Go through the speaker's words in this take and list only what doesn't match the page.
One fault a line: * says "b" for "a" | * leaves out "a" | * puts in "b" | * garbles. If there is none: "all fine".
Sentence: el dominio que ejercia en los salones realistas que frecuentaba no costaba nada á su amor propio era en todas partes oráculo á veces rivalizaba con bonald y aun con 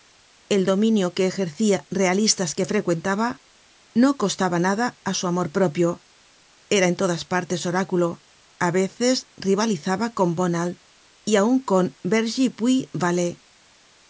* leaves out "en los salones"